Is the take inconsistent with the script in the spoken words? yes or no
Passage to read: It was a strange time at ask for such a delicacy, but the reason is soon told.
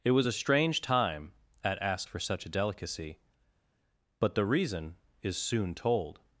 no